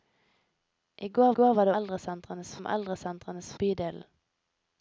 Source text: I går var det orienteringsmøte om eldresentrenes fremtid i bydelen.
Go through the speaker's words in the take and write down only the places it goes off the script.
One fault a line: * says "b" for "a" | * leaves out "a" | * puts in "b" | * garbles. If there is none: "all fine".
* puts in "går"
* says "eldresentrenes" for "orienteringsmøte"
* leaves out "fremtid i"